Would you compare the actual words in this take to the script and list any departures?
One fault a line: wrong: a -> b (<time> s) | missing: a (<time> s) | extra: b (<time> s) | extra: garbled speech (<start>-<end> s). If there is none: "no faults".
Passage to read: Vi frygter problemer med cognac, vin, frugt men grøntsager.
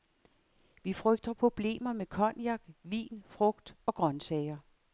wrong: men -> og (3.9 s)